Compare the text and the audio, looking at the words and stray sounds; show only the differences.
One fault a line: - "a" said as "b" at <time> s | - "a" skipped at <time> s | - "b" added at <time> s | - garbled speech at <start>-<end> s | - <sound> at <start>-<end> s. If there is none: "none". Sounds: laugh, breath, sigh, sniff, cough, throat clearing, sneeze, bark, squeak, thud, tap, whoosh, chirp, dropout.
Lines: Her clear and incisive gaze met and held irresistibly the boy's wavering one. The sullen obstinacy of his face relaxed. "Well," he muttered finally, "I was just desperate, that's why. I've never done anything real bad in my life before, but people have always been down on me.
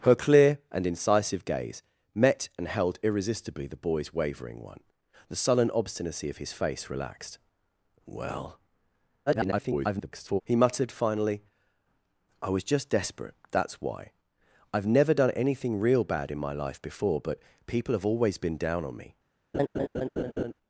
- garbled speech at 9.3-10.4 s
- laugh at 19.5-20.5 s